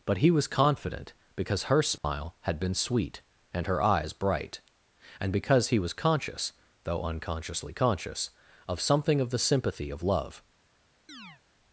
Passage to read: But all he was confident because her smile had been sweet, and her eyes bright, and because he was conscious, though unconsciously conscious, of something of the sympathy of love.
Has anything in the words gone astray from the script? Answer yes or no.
yes